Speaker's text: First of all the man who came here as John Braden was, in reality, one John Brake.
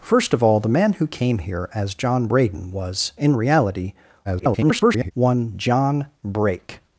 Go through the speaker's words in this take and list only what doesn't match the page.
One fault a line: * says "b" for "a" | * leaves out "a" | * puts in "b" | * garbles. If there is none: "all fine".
* garbles